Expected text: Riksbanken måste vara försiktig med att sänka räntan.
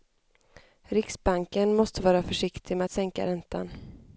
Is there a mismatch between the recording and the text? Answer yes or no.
no